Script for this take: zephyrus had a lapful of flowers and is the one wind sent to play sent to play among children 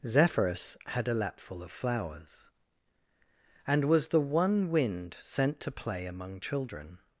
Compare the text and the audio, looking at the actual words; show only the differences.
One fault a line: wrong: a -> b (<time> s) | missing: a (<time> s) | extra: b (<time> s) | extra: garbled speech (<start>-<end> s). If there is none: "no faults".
wrong: is -> was (3.9 s)
missing: sent to play (6.1 s)